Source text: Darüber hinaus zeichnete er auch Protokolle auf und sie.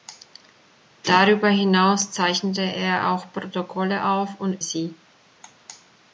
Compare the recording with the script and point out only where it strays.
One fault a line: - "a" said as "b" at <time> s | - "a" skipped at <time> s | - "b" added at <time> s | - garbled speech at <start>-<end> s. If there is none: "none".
none